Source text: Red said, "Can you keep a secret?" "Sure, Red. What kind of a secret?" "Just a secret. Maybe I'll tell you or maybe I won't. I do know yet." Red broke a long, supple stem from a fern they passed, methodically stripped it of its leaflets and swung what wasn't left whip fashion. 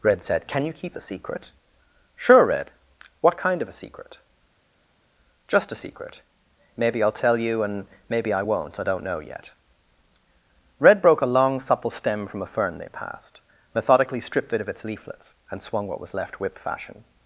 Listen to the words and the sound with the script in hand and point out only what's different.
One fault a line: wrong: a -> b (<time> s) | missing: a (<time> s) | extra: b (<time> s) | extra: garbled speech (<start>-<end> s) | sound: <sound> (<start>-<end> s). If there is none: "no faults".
wrong: or -> and (7.6 s)
wrong: do -> don't (8.8 s)
wrong: wasn't -> was (16.0 s)